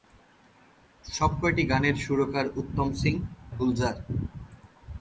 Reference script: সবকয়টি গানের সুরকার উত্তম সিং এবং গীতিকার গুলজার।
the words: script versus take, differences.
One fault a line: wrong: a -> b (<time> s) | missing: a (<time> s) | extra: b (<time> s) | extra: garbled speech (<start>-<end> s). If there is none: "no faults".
missing: এবং গীতিকার (3.1 s)